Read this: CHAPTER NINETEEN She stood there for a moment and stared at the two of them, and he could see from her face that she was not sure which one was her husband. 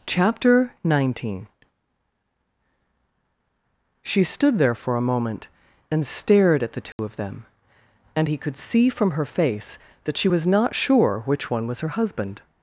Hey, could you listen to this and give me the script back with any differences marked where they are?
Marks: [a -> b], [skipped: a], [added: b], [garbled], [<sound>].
CHAPTER NINETEEN She stood there for a moment and stared at the two [dropout] of them, and he could see from her face that she was not sure which one was her husband.